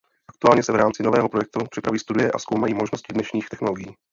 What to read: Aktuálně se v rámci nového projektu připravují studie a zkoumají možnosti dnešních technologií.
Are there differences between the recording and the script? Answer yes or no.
no